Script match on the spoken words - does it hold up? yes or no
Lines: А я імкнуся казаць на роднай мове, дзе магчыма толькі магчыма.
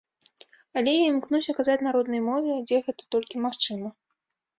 no